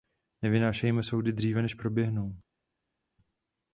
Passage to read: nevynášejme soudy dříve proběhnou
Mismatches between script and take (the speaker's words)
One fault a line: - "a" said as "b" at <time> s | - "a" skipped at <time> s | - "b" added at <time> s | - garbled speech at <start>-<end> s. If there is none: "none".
- "než" added at 1.6 s